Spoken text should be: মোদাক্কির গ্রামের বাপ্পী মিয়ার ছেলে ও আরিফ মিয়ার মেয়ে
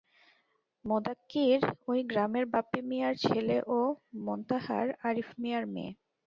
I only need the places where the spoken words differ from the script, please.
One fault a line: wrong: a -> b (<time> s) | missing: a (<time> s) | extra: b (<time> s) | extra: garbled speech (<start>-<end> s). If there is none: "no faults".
extra: ওই (1.9 s)
extra: মোন্তাহার (4.3 s)